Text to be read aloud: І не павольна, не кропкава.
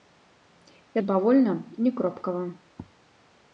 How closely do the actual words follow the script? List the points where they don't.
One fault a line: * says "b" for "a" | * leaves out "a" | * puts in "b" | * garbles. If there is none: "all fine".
all fine